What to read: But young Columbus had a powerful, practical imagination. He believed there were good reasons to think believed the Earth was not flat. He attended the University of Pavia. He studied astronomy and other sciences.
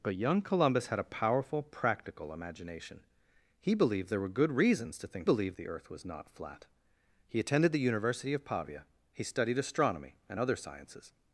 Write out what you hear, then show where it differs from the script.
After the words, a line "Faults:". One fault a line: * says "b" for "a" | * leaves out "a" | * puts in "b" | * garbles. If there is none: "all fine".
But young Columbus had a powerful, practical imagination. He believed there were good reasons to think believed the Earth was not flat. He attended the University of Pavia. He studied astronomy and other sciences.
Faults:
all fine